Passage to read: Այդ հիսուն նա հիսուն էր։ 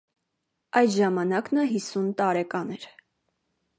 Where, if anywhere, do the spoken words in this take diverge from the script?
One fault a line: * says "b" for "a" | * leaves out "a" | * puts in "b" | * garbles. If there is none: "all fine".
* says "ժամանակ" for "հիսուն"
* puts in "տարեկան"